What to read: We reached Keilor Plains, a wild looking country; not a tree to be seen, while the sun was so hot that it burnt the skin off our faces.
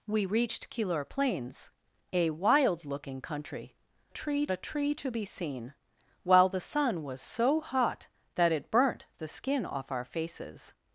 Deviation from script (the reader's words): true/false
true